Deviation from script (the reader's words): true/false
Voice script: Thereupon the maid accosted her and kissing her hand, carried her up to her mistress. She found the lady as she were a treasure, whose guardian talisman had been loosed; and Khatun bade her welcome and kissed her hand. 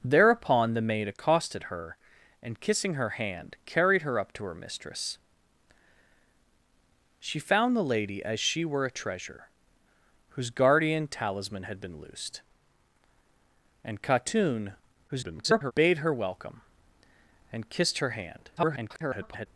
true